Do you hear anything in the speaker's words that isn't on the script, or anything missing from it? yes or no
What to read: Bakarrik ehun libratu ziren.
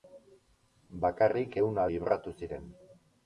no